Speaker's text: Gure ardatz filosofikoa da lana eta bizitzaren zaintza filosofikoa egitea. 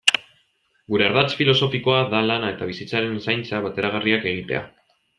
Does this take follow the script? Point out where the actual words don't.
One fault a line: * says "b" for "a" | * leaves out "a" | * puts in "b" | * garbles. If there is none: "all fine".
* says "bateragarriak" for "filosofikoa"